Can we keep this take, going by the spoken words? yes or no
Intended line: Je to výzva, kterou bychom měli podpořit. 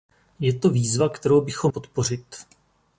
no